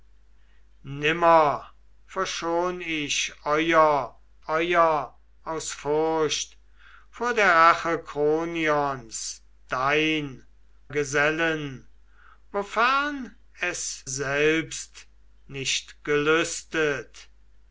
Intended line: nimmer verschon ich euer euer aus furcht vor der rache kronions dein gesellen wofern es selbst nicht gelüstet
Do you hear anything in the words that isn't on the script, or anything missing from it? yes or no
no